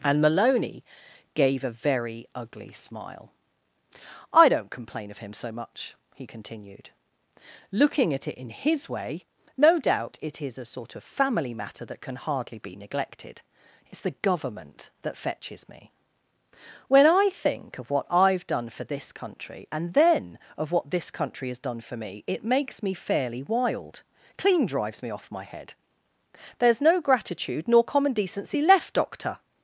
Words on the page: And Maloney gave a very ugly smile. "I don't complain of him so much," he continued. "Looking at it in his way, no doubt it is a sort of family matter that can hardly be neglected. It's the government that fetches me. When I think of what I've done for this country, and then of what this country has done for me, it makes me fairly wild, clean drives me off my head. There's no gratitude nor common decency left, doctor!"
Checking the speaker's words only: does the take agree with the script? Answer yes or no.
yes